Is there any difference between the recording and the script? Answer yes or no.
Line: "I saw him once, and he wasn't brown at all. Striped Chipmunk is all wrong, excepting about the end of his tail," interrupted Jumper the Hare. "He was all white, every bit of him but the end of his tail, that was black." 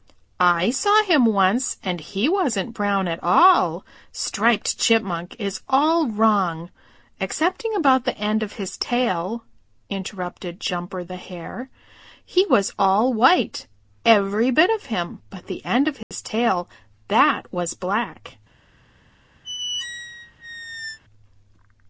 no